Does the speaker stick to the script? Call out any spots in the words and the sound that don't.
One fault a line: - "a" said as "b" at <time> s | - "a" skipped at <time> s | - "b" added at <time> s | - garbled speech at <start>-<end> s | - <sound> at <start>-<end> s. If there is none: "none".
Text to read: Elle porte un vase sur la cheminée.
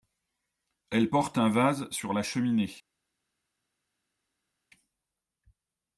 none